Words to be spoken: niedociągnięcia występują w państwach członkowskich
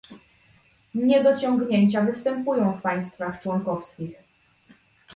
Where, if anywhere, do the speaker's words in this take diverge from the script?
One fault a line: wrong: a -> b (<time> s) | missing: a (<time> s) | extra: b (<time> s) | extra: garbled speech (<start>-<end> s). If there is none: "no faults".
no faults